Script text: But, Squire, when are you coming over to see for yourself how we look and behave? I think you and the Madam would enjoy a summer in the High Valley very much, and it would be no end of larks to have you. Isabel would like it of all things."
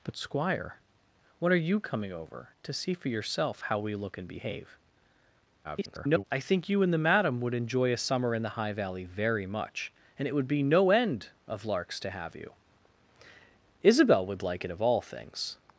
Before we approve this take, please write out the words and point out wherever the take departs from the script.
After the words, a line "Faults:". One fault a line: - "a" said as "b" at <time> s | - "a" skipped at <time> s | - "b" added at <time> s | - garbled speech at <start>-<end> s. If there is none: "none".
But, Squire, when are you coming over to see for yourself how we look and behave? [garbled] I think you and the Madam would enjoy a summer in the High Valley very much, and it would be no end of larks to have you. Isabel would like it of all things."
Faults:
- garbled speech at 5.6-6.2 s